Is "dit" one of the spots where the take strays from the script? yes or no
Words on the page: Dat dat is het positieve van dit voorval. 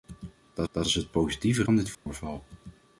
no